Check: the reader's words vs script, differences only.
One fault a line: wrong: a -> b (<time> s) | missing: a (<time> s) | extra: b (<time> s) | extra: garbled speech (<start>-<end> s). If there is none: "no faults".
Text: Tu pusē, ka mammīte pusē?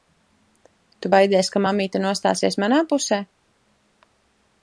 wrong: pusē -> baidies (1.1 s)
extra: nostāsies manā (2.1 s)